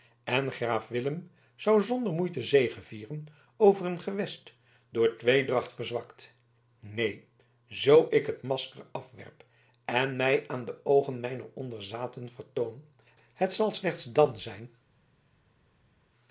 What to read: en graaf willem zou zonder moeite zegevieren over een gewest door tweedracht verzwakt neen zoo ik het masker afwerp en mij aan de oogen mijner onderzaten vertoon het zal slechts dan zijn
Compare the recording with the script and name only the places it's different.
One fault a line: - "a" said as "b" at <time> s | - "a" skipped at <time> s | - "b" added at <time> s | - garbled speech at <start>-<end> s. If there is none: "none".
none